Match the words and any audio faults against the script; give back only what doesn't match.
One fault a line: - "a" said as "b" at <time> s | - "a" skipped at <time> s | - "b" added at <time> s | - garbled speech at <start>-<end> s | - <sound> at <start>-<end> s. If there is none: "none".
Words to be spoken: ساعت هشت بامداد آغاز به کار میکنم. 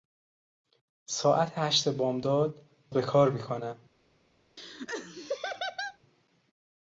- "آغاز" skipped at 2.6 s
- laugh at 4.6-6.0 s